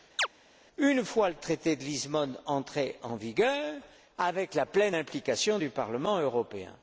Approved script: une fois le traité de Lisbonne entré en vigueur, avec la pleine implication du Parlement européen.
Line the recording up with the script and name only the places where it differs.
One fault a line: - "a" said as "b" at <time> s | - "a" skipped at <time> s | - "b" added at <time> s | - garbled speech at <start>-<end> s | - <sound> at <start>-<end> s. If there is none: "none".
- chirp at 0.2-0.3 s